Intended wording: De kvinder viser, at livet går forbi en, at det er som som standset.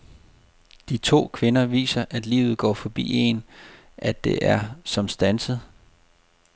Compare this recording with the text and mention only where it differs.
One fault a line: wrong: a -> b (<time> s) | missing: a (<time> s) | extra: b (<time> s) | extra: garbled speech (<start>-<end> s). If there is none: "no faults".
extra: to (1.0 s)
missing: som (5.1 s)